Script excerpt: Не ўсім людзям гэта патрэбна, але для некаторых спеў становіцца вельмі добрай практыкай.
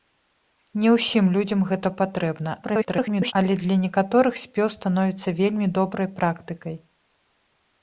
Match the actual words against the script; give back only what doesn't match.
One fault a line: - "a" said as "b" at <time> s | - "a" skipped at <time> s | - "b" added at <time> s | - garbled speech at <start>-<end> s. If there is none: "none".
- garbled speech at 2.6-3.3 s